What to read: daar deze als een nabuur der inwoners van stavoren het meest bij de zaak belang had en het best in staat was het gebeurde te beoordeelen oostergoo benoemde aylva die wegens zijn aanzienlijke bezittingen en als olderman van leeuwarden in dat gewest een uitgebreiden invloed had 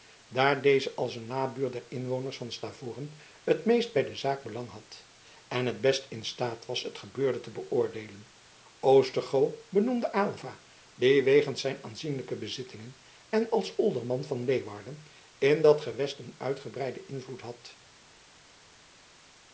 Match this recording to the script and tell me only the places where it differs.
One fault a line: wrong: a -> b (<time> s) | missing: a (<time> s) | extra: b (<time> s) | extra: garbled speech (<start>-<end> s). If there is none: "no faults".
no faults